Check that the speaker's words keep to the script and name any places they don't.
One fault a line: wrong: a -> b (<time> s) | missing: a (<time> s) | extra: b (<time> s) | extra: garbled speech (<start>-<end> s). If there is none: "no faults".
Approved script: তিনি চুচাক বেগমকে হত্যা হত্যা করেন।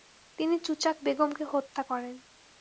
missing: হত্যা (1.8 s)